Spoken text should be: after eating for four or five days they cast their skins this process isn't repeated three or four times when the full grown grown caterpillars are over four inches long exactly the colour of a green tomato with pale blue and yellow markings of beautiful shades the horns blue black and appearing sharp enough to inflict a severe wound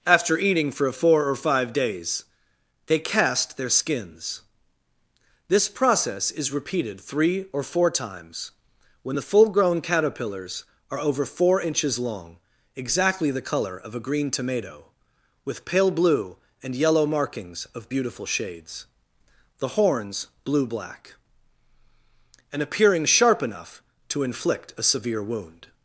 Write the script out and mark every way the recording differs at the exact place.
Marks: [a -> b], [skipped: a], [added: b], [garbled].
after eating for four or five days they cast their skins this process [isn't -> is] repeated three or four times when the full grown [skipped: grown] caterpillars are over four inches long exactly the colour of a green tomato with pale blue and yellow markings of beautiful shades the horns blue black and appearing sharp enough to inflict a severe wound